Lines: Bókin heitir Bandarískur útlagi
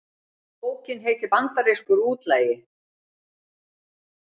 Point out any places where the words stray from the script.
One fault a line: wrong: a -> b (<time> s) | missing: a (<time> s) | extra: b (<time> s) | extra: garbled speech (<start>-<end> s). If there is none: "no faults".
no faults